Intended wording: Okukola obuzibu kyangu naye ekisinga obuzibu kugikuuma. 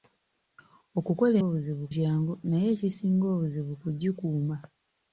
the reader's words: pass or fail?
pass